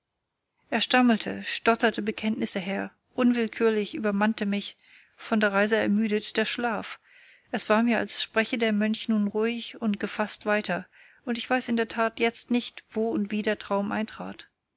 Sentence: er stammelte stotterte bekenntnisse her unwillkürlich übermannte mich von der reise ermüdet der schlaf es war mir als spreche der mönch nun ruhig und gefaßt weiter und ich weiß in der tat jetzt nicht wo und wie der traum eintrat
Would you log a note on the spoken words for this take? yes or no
no